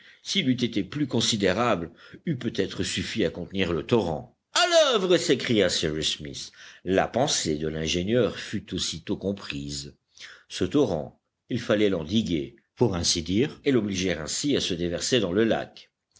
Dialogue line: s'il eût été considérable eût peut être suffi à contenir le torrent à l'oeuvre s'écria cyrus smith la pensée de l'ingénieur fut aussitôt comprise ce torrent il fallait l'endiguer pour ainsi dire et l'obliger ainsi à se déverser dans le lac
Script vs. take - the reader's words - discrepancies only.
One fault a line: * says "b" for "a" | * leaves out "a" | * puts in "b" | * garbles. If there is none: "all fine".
* puts in "plus"